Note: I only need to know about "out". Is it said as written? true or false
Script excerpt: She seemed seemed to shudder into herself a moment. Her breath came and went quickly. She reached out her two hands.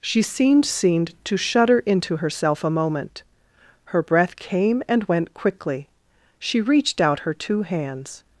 true